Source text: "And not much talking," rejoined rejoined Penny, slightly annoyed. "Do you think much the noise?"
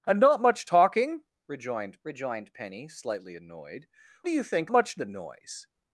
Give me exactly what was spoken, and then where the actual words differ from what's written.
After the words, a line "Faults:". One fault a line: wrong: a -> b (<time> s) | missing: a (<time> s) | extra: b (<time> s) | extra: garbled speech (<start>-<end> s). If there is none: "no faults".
"And not much talking," rejoined rejoined Penny, slightly annoyed. "Do you think much the noise?"
Faults:
no faults